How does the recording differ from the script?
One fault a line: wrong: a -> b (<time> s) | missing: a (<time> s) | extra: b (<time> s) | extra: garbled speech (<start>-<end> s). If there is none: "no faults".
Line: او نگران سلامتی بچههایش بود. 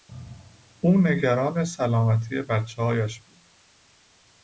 no faults